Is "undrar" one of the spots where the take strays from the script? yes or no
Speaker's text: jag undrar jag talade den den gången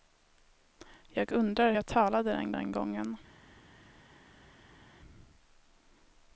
no